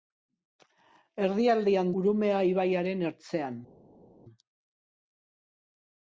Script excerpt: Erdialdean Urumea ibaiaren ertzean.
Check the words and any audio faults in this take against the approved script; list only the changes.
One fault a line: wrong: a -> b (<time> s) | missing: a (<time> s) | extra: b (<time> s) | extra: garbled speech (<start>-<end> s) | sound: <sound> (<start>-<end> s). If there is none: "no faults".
no faults